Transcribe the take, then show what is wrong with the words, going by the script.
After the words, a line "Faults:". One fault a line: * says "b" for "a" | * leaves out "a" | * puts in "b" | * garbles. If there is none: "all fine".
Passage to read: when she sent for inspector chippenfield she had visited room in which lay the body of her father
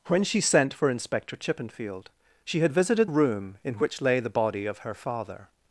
when she sent for inspector chippenfield she had visited room in which lay the body of her father
Faults:
all fine